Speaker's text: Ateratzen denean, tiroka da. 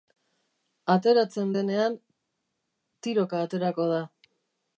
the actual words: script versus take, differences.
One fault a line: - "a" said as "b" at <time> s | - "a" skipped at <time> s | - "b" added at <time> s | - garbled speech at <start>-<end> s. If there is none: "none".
- "aterako" added at 3.5 s